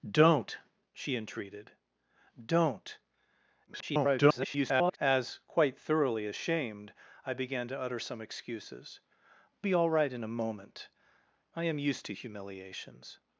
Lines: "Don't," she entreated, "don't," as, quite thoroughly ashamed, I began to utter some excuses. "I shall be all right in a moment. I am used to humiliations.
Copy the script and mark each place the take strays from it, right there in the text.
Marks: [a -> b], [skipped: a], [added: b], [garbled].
"Don't," she entreated, "don't," [garbled] as, quite thoroughly ashamed, I began to utter some excuses. [skipped: "I shall] be all right in a moment. I am used to humiliations.